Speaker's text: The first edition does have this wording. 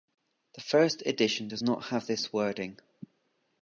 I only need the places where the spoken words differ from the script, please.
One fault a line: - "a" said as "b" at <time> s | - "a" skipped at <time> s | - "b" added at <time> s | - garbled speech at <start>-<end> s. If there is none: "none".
- "not" added at 1.6 s